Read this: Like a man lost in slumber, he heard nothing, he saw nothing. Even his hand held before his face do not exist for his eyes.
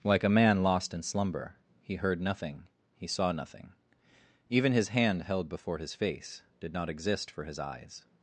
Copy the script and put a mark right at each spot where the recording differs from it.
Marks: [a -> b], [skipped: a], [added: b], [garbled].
Like a man lost in slumber, he heard nothing, he saw nothing. Even his hand held before his face [do -> did] not exist for his eyes.